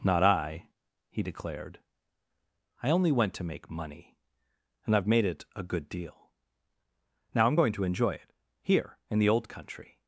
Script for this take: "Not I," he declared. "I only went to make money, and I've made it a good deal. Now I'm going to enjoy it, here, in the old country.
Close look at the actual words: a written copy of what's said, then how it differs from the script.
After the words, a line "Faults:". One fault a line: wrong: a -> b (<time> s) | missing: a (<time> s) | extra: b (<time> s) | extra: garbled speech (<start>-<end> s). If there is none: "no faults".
"Not I," he declared. "I only went to make money, and I've made it a good deal. Now I'm going to enjoy it, here, in the old country.
Faults:
no faults